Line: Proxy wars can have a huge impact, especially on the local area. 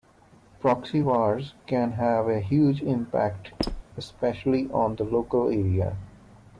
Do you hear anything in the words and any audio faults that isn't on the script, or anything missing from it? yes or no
yes